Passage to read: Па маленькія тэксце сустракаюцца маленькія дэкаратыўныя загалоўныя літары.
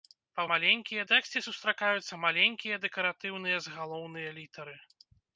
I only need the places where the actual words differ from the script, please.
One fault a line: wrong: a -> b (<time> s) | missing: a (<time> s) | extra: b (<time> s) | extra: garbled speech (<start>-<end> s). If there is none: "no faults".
no faults